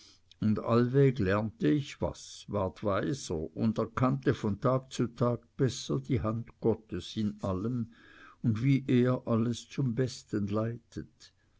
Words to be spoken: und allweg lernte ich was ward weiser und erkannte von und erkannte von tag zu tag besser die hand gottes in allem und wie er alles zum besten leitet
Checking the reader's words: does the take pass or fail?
fail